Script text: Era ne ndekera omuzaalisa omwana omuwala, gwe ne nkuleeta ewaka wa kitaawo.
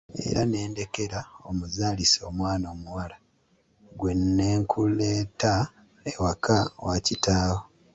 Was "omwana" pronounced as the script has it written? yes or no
yes